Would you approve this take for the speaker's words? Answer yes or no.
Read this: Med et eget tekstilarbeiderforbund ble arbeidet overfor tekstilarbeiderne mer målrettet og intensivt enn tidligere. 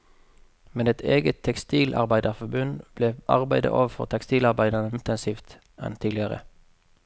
no